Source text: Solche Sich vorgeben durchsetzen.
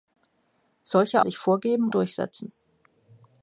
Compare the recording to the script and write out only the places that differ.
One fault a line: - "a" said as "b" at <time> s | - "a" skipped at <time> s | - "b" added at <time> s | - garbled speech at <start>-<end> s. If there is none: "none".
none